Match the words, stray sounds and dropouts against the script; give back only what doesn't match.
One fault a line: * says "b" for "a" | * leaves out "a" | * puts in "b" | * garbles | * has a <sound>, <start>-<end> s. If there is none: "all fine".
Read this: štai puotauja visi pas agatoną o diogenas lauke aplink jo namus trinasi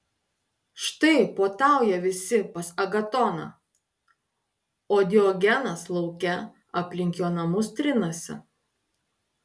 all fine